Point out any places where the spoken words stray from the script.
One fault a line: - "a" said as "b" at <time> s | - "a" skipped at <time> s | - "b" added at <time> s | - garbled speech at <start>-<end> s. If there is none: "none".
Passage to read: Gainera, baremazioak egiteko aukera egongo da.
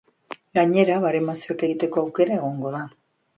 none